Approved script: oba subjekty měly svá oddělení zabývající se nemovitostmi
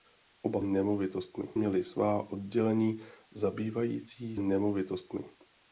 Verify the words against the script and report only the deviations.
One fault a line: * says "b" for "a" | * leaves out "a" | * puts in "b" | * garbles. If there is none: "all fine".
* says "nemovitostmi" for "subjekty"
* leaves out "se"